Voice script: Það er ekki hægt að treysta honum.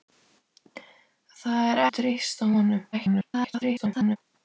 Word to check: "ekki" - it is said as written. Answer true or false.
false